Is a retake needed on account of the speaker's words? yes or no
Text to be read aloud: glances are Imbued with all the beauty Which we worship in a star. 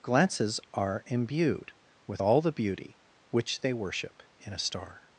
yes